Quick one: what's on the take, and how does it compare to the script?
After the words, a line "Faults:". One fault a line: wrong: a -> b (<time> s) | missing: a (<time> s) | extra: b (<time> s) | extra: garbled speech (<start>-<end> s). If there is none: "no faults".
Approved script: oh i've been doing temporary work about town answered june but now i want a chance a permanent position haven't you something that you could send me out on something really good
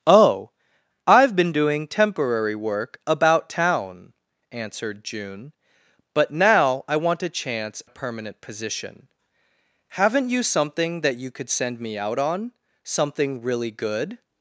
oh i've been doing temporary work about town answered june but now i want a chance a permanent position haven't you something that you could send me out on something really good
Faults:
no faults